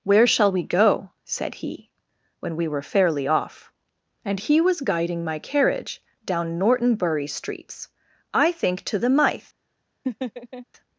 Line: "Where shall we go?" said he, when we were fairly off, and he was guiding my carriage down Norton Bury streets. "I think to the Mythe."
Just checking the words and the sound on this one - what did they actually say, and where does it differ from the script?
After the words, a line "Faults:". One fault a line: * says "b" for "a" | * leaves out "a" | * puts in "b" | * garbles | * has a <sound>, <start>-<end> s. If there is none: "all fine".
"Where shall we go?" said he, when we were fairly off, and he was guiding my carriage down Norton Bury streets. "I think to the Mythe."
Faults:
* has a laugh, 10.0-10.7 s